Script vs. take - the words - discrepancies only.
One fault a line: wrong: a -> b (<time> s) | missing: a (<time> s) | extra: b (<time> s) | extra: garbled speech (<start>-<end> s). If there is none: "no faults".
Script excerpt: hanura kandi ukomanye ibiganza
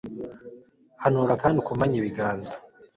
no faults